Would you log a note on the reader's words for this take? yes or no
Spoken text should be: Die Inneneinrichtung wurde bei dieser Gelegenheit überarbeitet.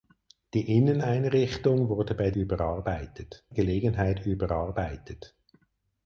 yes